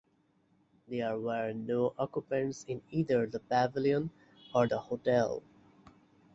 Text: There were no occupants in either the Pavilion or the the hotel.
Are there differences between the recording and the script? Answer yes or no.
yes